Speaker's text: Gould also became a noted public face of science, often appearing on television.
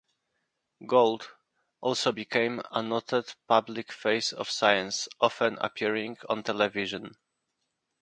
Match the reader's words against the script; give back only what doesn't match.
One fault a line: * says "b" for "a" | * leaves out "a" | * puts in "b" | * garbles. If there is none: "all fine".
all fine